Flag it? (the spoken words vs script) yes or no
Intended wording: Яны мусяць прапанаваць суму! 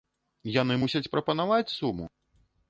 no